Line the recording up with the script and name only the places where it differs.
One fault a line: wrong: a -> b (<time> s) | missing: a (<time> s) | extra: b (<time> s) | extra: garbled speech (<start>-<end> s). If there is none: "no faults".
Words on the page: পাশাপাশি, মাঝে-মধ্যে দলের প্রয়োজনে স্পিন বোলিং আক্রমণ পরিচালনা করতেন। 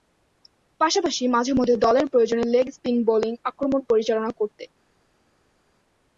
extra: লেগ (2.5 s)